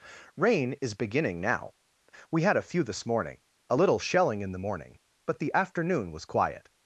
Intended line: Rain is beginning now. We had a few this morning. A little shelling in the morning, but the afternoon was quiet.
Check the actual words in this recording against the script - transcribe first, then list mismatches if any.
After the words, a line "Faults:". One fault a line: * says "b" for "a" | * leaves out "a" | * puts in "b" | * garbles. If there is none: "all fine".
Rain is beginning now. We had a few this morning. A little shelling in the morning, but the afternoon was quiet.
Faults:
all fine